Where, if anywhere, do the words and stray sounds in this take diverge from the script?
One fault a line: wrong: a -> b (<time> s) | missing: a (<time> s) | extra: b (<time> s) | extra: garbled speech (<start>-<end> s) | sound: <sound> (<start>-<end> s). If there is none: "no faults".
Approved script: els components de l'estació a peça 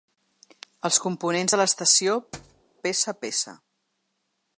sound: thud (2.3-2.6 s)
extra: peça (2.9 s)